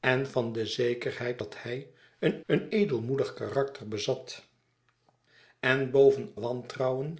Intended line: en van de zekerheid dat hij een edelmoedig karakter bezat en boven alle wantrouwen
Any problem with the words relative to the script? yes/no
yes